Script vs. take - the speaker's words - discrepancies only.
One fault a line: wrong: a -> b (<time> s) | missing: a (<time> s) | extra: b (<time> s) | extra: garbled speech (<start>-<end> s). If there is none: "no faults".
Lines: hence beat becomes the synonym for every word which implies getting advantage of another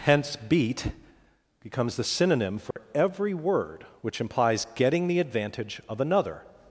extra: the (5.1 s)